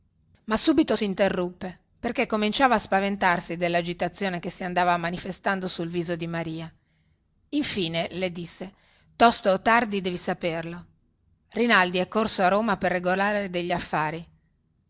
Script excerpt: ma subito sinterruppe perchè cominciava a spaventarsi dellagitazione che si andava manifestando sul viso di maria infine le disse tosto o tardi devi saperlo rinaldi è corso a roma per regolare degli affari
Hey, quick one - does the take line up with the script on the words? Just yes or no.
yes